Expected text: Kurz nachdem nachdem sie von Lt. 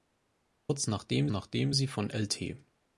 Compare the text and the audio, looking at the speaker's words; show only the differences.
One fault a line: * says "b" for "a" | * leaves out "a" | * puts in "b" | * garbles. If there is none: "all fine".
all fine